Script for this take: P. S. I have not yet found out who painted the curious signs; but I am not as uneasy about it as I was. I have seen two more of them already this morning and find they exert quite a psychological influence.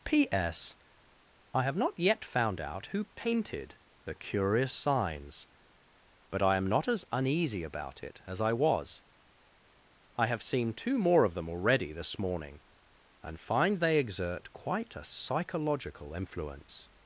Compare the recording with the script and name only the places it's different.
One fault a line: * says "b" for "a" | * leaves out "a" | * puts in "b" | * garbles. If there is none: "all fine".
all fine